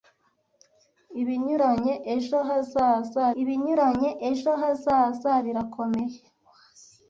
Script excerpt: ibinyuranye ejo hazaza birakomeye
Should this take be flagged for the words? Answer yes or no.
yes